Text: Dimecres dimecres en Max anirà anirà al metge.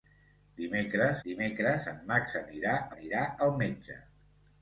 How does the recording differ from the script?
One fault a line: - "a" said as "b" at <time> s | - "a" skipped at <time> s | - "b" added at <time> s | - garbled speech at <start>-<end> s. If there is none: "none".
none